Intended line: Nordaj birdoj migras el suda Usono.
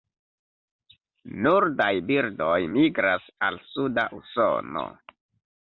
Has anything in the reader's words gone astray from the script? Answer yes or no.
yes